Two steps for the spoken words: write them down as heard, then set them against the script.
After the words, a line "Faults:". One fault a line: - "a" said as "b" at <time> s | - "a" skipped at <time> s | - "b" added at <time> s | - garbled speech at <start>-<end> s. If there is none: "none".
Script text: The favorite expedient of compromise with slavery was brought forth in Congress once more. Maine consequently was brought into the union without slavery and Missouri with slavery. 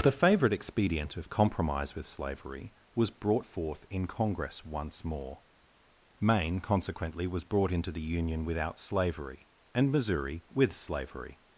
The favorite expedient of compromise with slavery was brought forth in Congress once more. Maine consequently was brought into the union without slavery and Missouri with slavery.
Faults:
none